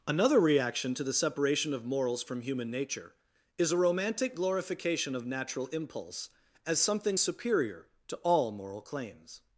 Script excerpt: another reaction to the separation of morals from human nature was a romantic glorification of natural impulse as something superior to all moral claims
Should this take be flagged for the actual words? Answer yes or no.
yes